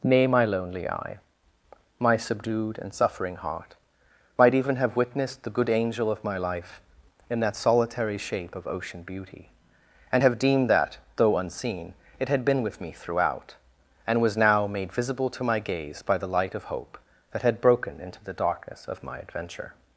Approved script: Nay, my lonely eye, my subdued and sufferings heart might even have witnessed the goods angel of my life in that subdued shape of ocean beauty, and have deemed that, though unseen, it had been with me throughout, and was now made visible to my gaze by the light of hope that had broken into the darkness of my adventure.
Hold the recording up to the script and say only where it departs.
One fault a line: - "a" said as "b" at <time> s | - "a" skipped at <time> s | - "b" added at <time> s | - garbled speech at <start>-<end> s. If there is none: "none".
- "sufferings" said as "suffering" at 2.9 s
- "goods" said as "good" at 5.5 s
- "subdued" said as "solitary" at 7.5 s